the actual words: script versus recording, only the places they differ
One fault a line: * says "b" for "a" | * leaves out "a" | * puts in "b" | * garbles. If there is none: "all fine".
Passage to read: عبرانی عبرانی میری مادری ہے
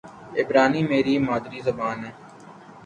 * leaves out "عبرانی"
* puts in "زبان"